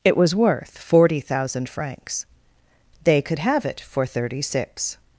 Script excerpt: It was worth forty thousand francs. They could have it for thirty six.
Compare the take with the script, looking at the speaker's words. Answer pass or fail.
pass